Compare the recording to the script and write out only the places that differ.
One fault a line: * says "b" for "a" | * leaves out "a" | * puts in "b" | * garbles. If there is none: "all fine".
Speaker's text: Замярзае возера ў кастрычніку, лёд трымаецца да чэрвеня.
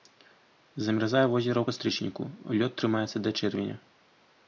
all fine